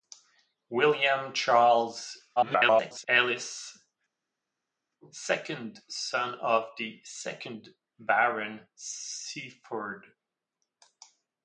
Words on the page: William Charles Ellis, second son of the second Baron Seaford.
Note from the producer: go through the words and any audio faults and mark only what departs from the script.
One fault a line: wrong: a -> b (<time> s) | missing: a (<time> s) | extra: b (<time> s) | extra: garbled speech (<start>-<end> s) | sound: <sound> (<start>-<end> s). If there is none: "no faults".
extra: garbled speech (2.4-3.1 s)